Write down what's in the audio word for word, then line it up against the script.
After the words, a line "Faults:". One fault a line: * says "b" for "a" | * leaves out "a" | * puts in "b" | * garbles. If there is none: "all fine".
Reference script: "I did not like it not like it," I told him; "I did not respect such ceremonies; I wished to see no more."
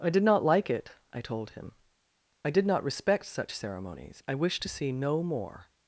"I did not like it," I told him; "I did not respect such ceremonies; I wished to see no more."
Faults:
* leaves out "not like it"